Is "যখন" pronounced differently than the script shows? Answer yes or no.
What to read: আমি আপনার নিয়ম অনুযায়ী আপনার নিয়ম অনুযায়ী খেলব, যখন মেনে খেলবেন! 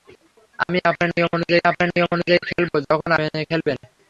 no